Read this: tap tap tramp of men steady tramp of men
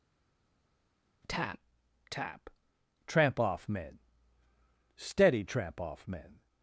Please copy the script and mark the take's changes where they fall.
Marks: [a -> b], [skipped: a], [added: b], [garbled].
tap tap tramp [of -> off] men steady tramp [of -> off] men